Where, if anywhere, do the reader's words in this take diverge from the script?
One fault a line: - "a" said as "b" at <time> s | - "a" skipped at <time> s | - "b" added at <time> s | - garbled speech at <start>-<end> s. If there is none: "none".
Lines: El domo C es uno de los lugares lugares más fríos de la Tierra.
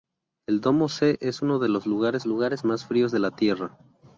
none